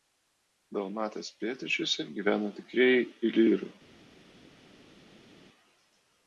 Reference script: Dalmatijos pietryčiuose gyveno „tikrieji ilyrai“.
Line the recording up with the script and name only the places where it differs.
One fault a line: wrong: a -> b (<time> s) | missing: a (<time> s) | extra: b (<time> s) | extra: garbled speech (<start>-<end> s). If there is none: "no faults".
no faults